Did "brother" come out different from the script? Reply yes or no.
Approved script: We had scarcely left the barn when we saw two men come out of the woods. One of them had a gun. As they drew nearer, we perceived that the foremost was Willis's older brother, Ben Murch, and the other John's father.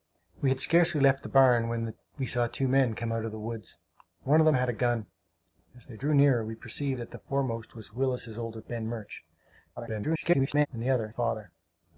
yes